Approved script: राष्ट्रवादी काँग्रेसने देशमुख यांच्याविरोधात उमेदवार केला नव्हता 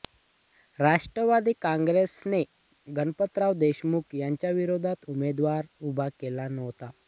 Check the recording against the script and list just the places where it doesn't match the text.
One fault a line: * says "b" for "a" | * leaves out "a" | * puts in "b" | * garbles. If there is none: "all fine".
* puts in "गणपतराव"
* puts in "उभा"